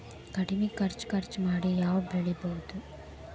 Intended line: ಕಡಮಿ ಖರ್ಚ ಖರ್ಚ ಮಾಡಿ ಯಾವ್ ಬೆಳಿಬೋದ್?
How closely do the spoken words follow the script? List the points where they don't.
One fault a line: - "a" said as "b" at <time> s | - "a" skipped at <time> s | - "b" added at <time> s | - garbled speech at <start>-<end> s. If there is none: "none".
none